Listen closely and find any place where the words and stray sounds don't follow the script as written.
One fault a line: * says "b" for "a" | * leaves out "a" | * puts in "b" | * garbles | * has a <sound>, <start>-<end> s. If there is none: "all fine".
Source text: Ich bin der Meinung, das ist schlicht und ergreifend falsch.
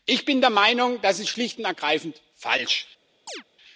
* has a chirp, 3.3-3.4 s